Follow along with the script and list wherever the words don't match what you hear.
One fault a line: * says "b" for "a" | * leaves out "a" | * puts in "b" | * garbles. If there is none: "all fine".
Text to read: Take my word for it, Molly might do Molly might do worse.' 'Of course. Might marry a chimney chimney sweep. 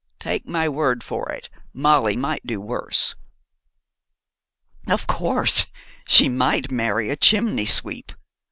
* leaves out "Molly might do"
* puts in "She"
* leaves out "chimney"